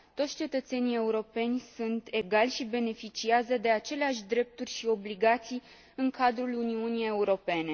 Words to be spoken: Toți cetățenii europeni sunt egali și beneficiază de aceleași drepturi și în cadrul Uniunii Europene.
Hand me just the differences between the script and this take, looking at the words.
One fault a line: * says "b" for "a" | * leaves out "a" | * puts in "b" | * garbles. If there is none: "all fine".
* puts in "obligații"